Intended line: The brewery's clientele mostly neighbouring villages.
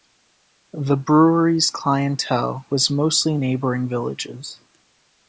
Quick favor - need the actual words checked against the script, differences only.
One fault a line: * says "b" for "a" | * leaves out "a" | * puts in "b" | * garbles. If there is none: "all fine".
* puts in "was"